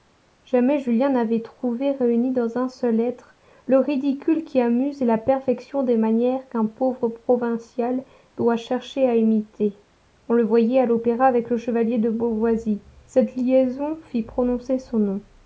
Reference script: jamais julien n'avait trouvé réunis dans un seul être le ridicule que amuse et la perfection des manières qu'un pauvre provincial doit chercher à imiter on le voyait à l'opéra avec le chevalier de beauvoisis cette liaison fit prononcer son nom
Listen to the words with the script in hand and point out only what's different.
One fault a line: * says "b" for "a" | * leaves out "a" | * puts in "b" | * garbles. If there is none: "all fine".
* says "qui" for "que"